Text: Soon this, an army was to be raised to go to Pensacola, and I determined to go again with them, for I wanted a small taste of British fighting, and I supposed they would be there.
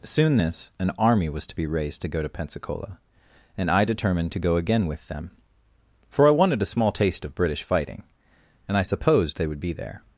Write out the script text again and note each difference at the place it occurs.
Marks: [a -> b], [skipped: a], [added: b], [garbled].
Soon this, an army was to be raised to go to Pensacola, and I determined to go again with them, for I wanted a small taste of British fighting, and I supposed they would be there.